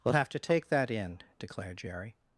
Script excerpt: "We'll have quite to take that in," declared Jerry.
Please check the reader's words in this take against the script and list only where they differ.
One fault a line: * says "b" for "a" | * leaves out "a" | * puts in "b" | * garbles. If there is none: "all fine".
* leaves out "quite"